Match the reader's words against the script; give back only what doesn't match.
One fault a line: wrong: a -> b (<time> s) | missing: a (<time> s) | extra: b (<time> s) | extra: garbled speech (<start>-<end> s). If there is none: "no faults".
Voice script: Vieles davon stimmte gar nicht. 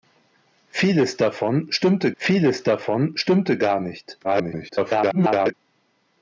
extra: vieles davon stimmte (2.2 s)
extra: garbled speech (4.2-5.5 s)